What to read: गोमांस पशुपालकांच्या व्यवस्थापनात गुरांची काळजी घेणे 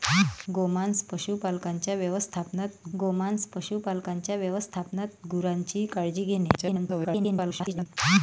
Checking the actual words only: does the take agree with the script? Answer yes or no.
no